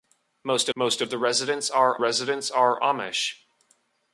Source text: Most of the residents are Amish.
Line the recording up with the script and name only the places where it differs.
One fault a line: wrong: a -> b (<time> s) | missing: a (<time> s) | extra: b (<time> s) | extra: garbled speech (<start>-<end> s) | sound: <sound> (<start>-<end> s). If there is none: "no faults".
extra: most (0.7 s)
extra: residents are (2.0 s)